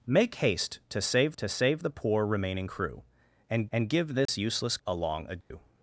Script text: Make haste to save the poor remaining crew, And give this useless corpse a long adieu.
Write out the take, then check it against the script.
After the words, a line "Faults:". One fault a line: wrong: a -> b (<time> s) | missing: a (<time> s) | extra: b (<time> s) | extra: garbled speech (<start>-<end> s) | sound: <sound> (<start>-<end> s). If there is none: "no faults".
Make haste to save to save the poor remaining crew, And And give this useless a long adieu.
Faults:
extra: to save (1.4 s)
extra: And (3.7 s)
sound: dropout (4.3-4.3 s)
missing: corpse (4.8 s)
sound: dropout (5.4-5.5 s)